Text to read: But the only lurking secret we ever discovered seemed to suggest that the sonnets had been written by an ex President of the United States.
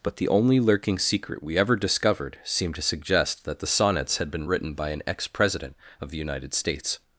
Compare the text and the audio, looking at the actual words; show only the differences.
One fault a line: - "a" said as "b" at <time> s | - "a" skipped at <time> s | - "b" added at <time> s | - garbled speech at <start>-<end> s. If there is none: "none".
none